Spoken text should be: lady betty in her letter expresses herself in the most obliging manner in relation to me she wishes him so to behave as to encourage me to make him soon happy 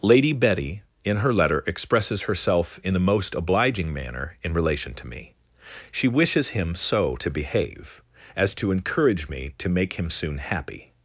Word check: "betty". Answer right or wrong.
right